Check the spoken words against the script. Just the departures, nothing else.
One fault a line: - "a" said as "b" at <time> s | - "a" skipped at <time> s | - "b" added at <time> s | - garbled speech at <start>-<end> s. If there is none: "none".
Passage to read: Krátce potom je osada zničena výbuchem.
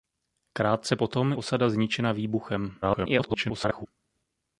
- "je" skipped at 1.3 s
- garbled speech at 2.8-3.9 s